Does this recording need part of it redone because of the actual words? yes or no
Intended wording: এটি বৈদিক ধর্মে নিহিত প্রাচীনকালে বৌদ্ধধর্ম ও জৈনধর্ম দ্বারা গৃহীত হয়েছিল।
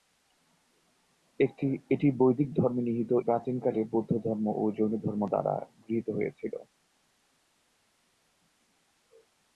no